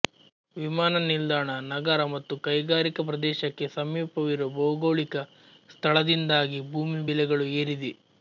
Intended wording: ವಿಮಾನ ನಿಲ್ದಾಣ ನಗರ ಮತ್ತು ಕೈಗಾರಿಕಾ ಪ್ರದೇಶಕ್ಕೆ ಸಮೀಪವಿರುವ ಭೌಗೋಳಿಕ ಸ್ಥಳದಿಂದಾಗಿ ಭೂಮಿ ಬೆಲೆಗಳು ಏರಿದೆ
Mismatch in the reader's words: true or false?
false